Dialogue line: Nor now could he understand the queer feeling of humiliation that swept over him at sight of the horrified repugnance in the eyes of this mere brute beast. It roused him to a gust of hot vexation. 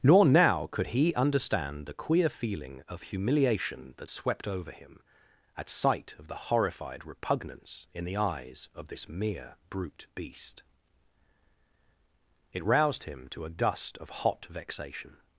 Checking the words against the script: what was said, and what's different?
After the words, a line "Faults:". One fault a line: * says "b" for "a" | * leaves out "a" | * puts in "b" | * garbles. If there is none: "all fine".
Nor now could he understand the queer feeling of humiliation that swept over him at sight of the horrified repugnance in the eyes of this mere brute beast. It roused him to a gust of hot vexation.
Faults:
all fine